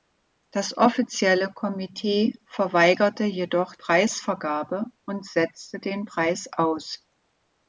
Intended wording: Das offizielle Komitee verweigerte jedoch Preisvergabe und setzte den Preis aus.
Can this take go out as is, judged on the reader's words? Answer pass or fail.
pass